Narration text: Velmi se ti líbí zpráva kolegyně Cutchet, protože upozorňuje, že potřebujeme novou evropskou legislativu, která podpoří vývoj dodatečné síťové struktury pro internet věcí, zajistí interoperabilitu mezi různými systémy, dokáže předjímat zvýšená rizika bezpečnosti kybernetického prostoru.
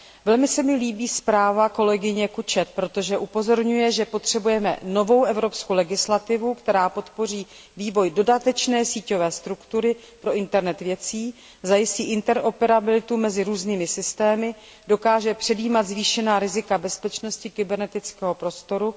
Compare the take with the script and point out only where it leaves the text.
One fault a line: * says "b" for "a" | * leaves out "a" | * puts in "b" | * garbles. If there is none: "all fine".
* says "mi" for "ti"